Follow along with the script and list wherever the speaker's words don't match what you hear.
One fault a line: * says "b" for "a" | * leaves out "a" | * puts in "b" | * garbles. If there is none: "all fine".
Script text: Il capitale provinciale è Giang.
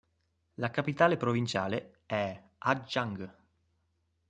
* says "La" for "Il"
* puts in "Hà"